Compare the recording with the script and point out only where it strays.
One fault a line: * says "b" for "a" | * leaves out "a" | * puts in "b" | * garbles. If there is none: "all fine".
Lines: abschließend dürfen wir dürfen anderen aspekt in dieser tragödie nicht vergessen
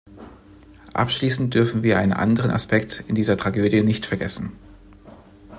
* says "einen" for "dürfen"